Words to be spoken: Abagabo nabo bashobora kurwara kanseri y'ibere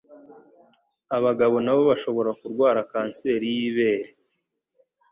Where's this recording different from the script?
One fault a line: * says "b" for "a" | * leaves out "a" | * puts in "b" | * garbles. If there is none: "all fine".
all fine